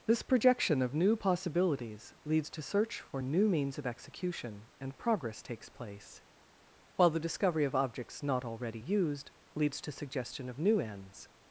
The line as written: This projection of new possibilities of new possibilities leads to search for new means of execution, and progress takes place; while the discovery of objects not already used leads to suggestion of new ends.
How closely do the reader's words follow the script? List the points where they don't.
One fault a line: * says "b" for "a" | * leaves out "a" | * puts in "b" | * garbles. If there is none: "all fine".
* leaves out "of new possibilities"